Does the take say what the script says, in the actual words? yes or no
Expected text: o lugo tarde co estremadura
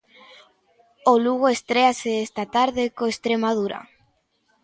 no